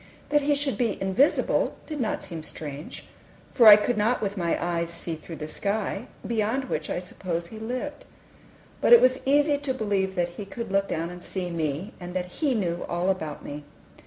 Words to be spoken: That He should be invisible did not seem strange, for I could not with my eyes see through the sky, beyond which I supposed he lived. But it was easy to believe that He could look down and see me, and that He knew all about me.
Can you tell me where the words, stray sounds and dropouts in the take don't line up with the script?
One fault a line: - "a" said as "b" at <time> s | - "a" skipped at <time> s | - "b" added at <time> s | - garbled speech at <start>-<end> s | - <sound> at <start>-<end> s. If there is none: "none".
none